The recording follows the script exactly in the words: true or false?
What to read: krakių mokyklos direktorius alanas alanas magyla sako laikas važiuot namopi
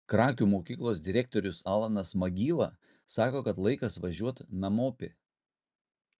false